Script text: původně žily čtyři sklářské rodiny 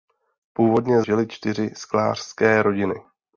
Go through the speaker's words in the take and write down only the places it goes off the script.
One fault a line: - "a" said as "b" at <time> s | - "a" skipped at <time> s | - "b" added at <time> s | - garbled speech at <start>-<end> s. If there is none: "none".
none